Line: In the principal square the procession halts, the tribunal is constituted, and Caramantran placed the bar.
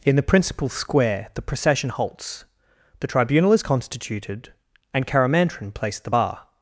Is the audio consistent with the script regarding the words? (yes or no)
yes